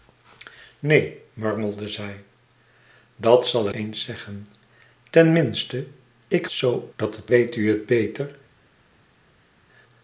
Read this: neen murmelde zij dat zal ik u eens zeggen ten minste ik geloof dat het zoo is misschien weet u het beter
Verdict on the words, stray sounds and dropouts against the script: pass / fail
fail